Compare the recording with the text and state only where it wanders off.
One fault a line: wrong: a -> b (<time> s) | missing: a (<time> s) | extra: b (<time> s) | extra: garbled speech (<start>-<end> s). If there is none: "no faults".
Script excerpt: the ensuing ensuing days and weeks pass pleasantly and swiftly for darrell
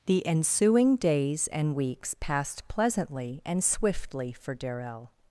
missing: ensuing (0.9 s)
wrong: pass -> passed (2.2 s)